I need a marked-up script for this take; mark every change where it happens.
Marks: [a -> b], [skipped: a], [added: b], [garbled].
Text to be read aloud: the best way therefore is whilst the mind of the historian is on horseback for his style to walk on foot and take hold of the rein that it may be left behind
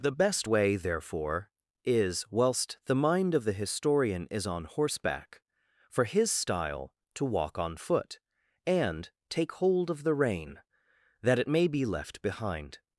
the best way therefore is whilst the mind of the historian is on horseback for his style to walk on foot and take hold of the rein that it may be left behind